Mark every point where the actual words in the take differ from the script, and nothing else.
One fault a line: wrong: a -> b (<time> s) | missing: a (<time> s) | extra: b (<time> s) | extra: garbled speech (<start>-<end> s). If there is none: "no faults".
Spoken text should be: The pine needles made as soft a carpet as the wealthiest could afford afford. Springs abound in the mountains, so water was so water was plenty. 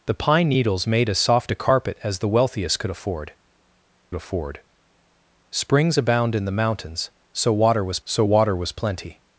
no faults